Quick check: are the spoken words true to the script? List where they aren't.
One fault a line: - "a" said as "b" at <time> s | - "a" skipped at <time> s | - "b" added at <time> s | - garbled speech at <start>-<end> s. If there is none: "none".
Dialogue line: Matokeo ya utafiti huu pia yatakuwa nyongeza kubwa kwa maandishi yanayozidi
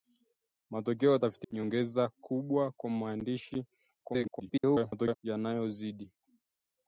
- "huu pia yatakuwa" skipped at 1.5 s
- garbled speech at 4.0-5.2 s